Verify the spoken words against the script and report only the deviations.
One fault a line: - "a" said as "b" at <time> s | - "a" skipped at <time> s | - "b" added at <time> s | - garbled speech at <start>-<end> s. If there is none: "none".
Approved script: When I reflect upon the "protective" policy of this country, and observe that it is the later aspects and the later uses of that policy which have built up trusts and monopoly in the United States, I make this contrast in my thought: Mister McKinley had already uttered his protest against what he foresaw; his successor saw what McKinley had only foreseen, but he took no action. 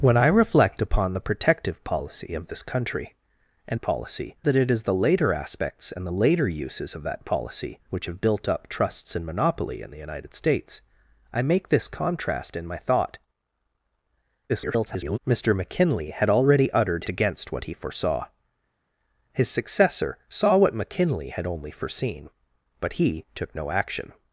- "observe" said as "policy" at 3.8 s
- garbled speech at 14.5-15.2 s
- "his protest" skipped at 17.0 s